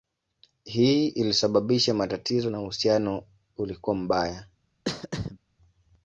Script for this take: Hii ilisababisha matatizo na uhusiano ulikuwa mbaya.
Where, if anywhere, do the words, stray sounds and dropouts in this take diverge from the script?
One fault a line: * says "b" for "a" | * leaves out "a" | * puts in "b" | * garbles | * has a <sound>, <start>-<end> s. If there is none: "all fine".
* has a throat clearing, 4.8-5.4 s